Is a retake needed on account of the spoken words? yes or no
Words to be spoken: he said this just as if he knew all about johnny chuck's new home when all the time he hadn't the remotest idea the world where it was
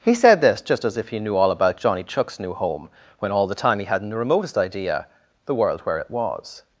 no